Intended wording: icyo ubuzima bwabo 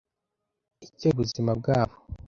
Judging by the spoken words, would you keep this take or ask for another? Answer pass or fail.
pass